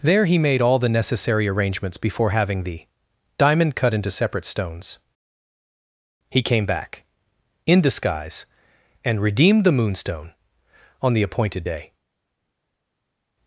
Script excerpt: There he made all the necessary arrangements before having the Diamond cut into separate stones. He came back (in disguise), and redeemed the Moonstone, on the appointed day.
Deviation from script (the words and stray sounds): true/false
false